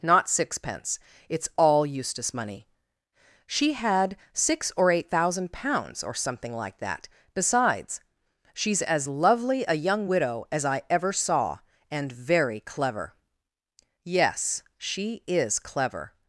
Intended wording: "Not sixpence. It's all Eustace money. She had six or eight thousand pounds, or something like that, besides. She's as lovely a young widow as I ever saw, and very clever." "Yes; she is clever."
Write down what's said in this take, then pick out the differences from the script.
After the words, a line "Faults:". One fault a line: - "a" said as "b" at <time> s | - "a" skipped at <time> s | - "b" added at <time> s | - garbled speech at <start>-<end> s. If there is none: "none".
"Not sixpence. It's all Eustace money. She had six or eight thousand pounds, or something like that, besides. She's as lovely a young widow as I ever saw, and very clever." "Yes; she is clever."
Faults:
none